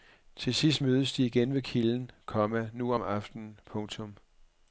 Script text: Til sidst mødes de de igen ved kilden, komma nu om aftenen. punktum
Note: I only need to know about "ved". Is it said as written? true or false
true